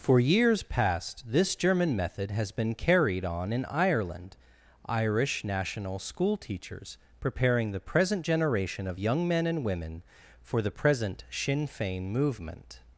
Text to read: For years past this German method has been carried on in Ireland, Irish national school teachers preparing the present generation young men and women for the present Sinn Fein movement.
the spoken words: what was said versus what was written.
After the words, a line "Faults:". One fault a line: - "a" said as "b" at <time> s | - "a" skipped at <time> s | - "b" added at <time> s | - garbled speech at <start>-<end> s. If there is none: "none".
For years past this German method has been carried on in Ireland, Irish national school teachers preparing the present generation of young men and women for the present Sinn Fein movement.
Faults:
- "of" added at 8.9 s